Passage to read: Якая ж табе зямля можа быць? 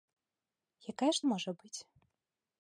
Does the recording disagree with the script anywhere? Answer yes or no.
yes